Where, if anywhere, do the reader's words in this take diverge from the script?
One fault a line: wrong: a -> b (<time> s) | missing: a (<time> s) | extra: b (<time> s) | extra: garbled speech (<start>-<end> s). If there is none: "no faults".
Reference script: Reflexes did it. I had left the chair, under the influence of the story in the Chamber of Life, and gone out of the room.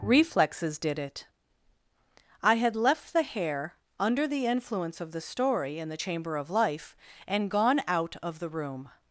wrong: chair -> hair (3.2 s)